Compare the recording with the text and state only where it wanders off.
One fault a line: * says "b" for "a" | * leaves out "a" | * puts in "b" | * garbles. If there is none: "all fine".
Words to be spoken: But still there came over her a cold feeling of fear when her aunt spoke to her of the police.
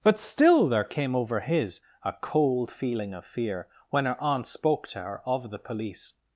* says "his" for "her"